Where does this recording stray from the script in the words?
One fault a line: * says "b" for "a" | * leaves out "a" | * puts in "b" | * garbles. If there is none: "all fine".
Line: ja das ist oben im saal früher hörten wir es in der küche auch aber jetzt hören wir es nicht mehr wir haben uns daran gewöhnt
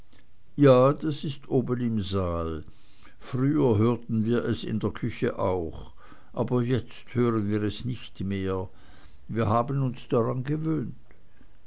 all fine